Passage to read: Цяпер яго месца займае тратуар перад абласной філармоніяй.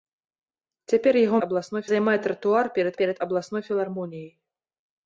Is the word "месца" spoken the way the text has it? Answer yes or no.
no